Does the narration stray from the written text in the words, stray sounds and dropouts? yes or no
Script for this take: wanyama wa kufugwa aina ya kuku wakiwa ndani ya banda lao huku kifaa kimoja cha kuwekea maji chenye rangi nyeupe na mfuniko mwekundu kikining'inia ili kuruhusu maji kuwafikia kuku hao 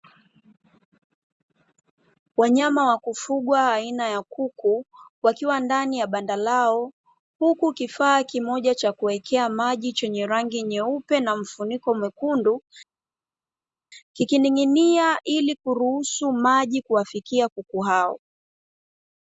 no